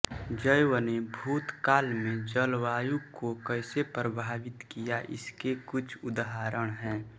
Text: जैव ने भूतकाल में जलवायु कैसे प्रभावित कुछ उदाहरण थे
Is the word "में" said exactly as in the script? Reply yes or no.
yes